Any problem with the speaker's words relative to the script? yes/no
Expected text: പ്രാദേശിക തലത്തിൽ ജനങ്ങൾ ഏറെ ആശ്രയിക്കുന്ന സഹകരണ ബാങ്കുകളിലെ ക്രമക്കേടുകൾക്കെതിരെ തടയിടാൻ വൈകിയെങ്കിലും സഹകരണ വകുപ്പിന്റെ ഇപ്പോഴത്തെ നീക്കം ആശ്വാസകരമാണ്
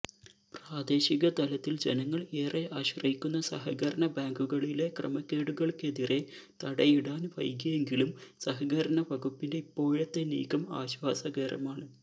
no